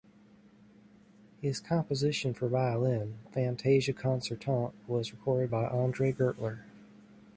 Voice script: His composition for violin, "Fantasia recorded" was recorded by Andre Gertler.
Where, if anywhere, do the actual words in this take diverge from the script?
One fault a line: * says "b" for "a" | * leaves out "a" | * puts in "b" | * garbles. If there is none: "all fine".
* says "concertante" for "recorded"